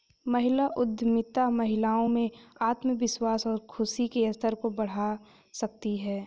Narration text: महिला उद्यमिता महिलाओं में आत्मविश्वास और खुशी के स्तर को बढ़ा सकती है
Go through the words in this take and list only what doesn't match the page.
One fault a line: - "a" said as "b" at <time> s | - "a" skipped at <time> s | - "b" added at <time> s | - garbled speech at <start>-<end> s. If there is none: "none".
none